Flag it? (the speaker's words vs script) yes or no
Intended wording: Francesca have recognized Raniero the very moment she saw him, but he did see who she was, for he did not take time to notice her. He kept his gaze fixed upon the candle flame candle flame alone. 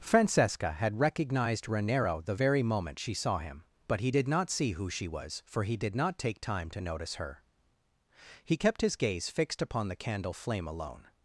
yes